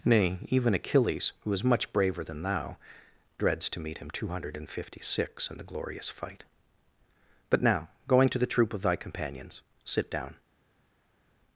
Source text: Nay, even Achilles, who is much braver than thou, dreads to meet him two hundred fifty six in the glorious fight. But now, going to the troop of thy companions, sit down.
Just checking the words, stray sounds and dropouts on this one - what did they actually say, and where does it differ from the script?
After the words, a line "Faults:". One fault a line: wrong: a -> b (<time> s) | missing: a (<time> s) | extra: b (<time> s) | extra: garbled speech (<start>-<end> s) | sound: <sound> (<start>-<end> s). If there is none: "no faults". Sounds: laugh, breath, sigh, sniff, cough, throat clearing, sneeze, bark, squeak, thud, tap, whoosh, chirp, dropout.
Nay, even Achilles, who is much braver than thou, dreads to meet him two hundred fifty six in the glorious fight. But now, going to the troop of thy companions, sit down.
Faults:
no faults